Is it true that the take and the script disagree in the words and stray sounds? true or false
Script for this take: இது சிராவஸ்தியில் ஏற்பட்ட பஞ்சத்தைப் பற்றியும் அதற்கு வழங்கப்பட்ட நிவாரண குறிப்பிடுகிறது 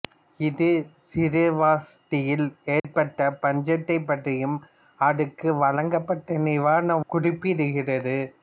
true